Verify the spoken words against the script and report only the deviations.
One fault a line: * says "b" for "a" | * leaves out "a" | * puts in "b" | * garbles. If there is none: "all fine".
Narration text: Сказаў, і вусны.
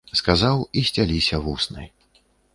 * puts in "сцяліся"